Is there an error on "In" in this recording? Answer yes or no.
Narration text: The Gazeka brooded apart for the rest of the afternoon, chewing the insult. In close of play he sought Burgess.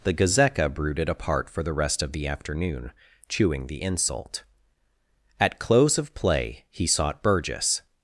yes